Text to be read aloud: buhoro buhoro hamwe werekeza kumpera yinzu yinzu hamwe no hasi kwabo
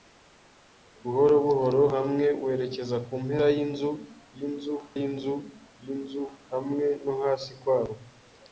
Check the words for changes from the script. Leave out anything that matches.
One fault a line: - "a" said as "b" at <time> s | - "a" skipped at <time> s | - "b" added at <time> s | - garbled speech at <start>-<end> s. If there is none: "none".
- "yinzu yinzu" added at 5.0 s